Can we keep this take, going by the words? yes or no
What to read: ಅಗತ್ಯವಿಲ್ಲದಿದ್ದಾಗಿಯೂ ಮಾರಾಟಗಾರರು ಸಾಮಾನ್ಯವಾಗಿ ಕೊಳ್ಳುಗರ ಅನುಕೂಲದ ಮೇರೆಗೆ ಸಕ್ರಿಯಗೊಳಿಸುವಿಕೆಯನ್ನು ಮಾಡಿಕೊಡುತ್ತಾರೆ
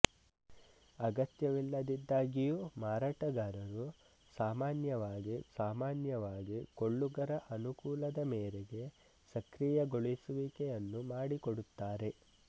no